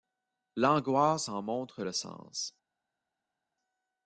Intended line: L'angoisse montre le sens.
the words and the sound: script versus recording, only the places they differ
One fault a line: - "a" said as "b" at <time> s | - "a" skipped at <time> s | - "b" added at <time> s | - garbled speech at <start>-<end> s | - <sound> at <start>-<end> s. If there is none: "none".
- "en" added at 1.3 s